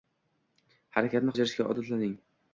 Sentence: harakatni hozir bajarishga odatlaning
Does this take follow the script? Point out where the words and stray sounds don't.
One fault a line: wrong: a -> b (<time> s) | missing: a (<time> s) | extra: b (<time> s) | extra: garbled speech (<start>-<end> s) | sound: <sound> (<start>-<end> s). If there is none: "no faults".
missing: hozir (1.4 s)